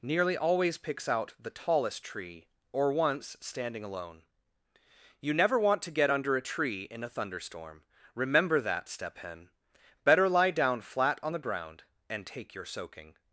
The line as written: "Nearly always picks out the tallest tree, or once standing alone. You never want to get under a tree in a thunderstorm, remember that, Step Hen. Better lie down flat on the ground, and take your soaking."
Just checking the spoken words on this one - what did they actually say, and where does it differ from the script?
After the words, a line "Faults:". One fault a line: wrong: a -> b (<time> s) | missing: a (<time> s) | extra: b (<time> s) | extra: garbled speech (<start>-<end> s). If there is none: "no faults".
"Nearly always picks out the tallest tree, or once standing alone. You never want to get under a tree in a thunderstorm, remember that, Step Hen. Better lie down flat on the ground, and take your soaking."
Faults:
no faults